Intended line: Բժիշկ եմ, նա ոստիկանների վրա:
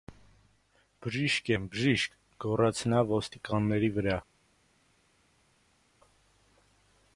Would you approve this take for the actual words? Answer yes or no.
no